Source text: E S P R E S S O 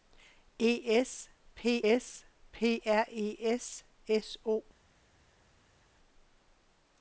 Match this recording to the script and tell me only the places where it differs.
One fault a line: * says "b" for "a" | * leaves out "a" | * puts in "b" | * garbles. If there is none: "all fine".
* puts in "S P"